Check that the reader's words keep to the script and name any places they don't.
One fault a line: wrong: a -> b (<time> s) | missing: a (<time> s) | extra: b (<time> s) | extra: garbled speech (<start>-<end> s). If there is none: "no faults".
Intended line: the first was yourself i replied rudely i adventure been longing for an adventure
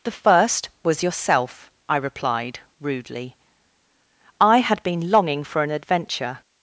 wrong: adventure -> had (4.6 s)